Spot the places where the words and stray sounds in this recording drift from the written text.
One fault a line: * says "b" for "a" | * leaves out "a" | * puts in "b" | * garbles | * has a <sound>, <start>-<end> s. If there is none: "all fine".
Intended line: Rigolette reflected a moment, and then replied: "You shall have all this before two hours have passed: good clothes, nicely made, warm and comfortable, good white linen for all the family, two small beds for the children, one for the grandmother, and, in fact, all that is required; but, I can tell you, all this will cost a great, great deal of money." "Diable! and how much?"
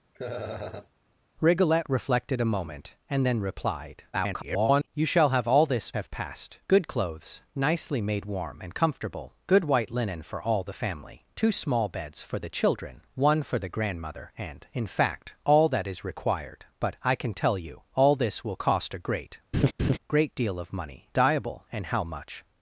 * has a laugh, 0.1-0.9 s
* garbles
* leaves out "before two hours"
* has a laugh, 19.5-20.0 s